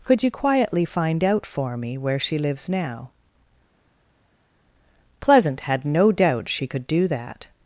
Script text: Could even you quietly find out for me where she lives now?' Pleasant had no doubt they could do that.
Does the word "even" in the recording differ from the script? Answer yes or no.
yes